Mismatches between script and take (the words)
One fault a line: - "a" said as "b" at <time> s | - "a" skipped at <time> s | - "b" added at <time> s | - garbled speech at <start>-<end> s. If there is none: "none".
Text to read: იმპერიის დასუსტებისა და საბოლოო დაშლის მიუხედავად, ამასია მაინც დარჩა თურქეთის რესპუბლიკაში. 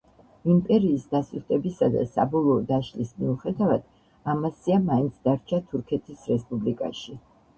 none